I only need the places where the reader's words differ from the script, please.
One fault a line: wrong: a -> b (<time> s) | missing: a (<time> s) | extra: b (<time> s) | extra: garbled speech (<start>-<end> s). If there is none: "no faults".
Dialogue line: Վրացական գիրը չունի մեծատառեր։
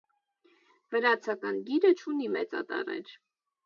no faults